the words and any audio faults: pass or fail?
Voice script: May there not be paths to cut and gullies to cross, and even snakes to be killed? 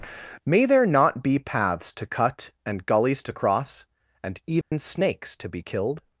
fail